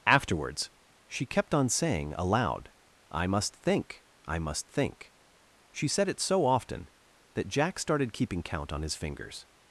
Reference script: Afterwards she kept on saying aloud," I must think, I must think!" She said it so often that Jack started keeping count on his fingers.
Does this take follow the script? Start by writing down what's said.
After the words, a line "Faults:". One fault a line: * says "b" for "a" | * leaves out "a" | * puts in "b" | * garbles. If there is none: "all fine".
Afterwards she kept on saying aloud," I must think, I must think!" She said it so often that Jack started keeping count on his fingers.
Faults:
all fine